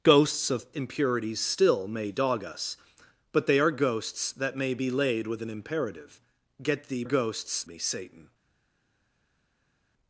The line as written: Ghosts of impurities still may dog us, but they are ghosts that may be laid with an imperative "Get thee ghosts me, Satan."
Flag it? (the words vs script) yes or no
no